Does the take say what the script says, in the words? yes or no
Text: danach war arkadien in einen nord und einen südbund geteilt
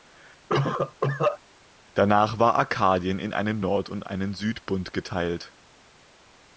yes